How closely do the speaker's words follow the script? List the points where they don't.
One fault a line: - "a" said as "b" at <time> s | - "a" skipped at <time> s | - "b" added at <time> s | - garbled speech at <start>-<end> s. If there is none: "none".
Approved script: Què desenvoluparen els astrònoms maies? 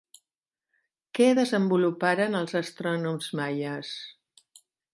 none